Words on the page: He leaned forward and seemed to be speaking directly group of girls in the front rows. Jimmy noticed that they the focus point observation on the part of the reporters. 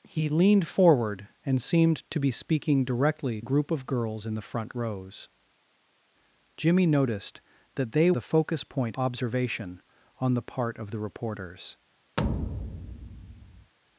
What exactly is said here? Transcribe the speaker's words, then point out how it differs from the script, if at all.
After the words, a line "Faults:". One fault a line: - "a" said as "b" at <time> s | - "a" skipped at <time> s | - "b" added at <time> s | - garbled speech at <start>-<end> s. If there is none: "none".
He leaned forward and seemed to be speaking directly group of girls in the front rows. Jimmy noticed that they the focus point observation on the part of the reporters.
Faults:
none